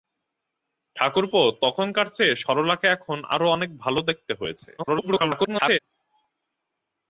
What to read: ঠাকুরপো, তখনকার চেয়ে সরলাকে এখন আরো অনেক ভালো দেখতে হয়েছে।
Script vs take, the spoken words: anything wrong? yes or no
yes